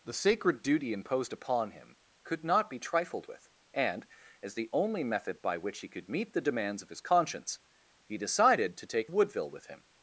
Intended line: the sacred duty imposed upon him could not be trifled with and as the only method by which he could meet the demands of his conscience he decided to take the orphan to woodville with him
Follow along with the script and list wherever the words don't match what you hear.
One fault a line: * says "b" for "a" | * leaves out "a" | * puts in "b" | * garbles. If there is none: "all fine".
* leaves out "the orphan to"